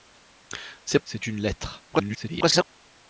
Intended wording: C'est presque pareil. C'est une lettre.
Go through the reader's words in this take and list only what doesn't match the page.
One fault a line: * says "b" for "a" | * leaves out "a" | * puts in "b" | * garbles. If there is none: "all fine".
* leaves out "presque pareil"
* garbles